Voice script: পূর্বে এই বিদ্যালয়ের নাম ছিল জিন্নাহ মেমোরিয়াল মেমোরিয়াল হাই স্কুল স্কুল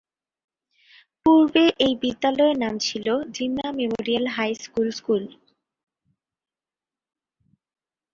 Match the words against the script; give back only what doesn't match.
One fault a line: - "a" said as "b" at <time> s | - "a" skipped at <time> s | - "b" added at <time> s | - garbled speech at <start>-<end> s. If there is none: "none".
- "মেমোরিয়াল" skipped at 4.2 s